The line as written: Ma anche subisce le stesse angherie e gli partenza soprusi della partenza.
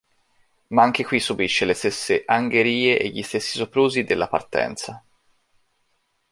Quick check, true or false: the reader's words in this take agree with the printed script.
false